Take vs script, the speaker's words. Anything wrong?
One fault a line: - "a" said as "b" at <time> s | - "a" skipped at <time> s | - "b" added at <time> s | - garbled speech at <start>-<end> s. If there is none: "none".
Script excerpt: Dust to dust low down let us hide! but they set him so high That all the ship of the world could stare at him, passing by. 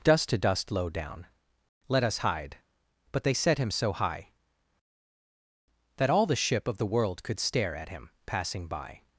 none